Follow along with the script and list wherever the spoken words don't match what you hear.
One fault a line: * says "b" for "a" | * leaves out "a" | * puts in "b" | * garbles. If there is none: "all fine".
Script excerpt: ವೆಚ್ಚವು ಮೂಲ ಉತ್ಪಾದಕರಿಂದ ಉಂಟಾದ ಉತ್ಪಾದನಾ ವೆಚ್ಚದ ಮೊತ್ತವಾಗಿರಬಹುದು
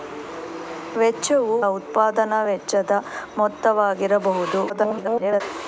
* leaves out "ಮೂಲ ಉತ್ಪಾದಕರಿಂದ ಉಂಟಾದ"
* garbles